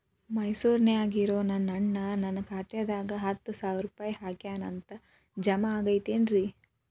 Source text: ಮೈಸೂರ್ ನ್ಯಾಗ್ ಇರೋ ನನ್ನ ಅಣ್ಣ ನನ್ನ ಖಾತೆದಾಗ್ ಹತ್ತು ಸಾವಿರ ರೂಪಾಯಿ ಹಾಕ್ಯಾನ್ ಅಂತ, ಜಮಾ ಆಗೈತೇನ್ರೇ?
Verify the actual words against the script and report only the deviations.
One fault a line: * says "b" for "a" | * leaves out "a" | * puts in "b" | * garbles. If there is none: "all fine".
all fine